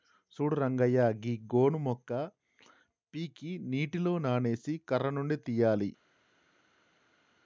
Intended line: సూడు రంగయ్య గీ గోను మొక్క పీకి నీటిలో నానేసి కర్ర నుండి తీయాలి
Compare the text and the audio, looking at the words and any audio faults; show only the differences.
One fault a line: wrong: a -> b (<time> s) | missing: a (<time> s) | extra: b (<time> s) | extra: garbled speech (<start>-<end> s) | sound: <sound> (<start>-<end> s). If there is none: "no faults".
no faults